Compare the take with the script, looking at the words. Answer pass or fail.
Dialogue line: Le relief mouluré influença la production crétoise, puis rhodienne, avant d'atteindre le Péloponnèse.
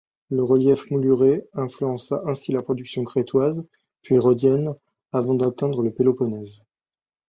fail